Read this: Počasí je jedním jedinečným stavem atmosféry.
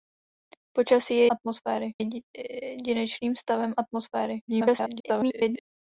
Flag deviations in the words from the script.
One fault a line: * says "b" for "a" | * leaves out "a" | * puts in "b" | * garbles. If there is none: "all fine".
* says "atmosféry" for "jedním"
* garbles